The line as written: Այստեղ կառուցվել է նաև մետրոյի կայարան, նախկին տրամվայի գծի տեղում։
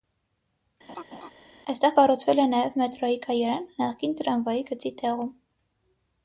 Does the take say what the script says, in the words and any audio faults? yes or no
no